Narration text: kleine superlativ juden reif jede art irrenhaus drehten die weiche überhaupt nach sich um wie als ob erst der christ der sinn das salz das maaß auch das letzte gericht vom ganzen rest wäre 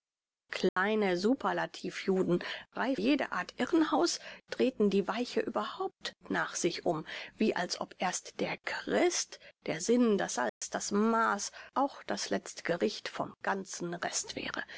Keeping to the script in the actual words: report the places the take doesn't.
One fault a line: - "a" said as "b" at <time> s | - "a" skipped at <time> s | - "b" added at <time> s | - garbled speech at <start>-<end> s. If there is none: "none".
none